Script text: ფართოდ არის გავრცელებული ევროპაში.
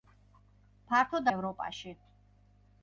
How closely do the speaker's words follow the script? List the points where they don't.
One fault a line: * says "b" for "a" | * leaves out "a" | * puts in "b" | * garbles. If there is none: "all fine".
* leaves out "არის გავრცელებული"